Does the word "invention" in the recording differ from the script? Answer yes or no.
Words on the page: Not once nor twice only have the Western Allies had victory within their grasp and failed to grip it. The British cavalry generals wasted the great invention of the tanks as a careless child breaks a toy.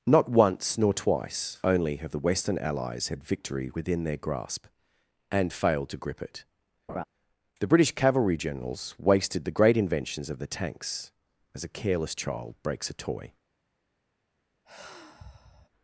yes